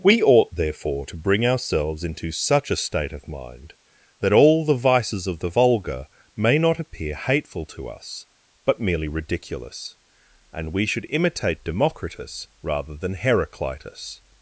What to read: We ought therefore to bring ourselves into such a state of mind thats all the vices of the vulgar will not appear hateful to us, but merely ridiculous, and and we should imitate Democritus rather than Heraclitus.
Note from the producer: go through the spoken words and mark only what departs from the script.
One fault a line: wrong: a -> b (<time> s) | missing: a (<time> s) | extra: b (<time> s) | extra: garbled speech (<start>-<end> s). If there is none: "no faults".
wrong: thats -> that (4.2 s)
wrong: will -> may (6.4 s)
missing: and (10.7 s)